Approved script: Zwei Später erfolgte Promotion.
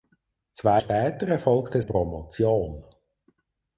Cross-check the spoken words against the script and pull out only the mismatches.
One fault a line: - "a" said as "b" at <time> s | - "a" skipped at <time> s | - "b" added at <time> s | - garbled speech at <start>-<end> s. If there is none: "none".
none